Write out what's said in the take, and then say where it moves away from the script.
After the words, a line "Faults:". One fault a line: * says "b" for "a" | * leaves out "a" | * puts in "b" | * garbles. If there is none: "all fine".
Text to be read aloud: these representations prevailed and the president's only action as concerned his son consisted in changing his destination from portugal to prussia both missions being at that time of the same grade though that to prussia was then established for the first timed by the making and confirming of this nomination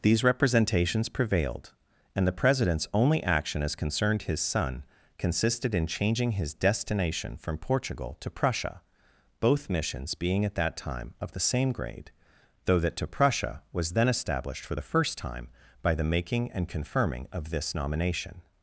these representations prevailed and the president's only action as concerned his son consisted in changing his destination from portugal to prussia both missions being at that time of the same grade though that to prussia was then established for the first time by the making and confirming of this nomination
Faults:
* says "time" for "timed"